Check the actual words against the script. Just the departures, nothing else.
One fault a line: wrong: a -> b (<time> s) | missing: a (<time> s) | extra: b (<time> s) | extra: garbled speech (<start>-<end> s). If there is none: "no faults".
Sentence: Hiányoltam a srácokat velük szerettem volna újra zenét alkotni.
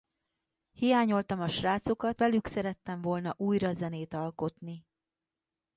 no faults